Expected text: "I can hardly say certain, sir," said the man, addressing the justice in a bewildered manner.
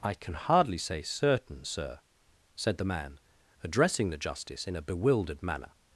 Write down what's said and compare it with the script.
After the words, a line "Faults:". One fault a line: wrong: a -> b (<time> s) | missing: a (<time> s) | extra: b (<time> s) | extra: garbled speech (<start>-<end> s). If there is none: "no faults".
"I can hardly say certain, sir," said the man, addressing the justice in a bewildered manner.
Faults:
no faults